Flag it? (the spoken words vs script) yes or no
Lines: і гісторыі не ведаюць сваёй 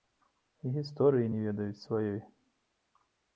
no